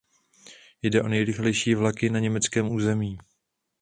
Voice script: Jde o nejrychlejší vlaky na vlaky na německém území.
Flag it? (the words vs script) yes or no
yes